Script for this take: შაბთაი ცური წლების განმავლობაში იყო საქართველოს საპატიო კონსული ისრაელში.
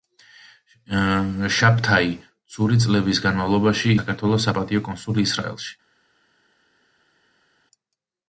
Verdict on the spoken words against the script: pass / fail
fail